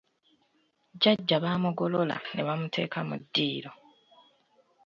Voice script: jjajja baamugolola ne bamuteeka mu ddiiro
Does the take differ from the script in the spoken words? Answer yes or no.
no